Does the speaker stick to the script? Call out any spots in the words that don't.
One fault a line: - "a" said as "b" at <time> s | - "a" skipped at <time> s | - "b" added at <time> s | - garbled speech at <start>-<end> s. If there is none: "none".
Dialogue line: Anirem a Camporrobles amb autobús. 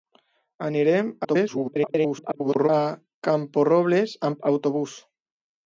- garbled speech at 1.2-2.7 s